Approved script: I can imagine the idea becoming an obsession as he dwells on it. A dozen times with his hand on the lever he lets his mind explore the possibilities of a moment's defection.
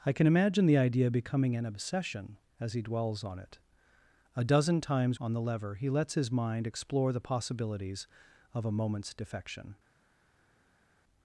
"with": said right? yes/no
no